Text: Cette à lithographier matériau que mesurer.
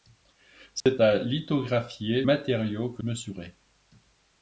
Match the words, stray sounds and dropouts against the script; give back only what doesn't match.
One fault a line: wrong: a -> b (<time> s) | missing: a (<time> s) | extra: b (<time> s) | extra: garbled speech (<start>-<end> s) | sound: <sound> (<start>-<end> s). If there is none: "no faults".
sound: dropout (0.8-0.9 s)